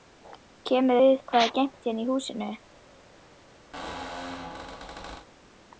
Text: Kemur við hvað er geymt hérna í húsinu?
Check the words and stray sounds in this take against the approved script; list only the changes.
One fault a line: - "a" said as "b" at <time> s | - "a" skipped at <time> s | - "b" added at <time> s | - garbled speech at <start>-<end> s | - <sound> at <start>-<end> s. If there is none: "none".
- squeak at 3.7-5.3 s